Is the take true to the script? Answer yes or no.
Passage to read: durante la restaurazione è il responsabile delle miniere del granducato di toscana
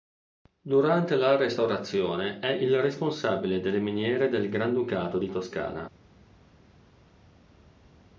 yes